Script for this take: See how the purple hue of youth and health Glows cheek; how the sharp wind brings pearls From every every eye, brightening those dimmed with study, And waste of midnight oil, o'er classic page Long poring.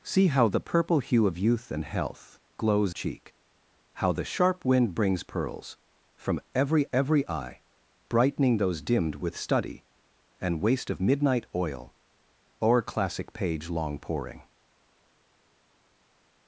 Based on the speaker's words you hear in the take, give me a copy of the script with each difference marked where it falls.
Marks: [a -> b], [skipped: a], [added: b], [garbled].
See how the purple hue of youth and health Glows cheek; how the sharp wind brings pearls From every every eye, brightening those dimmed with study, And waste of midnight oil, o'er classic page Long poring.